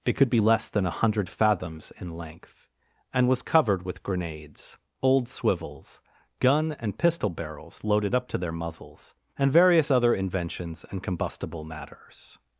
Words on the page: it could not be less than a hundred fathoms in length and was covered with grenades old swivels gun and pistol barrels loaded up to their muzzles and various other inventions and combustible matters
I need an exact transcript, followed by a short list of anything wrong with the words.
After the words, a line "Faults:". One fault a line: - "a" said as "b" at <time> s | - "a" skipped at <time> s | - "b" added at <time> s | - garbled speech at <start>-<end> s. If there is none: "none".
it could be less than a hundred fathoms in length and was covered with grenades old swivels gun and pistol barrels loaded up to their muzzles and various other inventions and combustible matters
Faults:
- "not" skipped at 0.3 s